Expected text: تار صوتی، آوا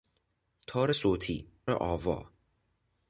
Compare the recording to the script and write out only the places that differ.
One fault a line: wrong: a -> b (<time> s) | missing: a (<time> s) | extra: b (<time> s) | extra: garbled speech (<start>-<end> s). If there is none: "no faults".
no faults